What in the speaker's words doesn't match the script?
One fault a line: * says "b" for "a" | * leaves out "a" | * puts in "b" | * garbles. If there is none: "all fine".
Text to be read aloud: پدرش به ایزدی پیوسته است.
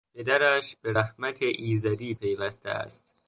* puts in "رحمت"